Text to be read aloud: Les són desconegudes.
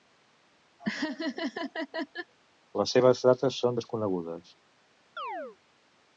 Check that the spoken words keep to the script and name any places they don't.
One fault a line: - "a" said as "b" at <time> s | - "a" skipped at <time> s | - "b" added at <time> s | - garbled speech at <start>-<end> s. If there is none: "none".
- "seves dates" added at 3.0 s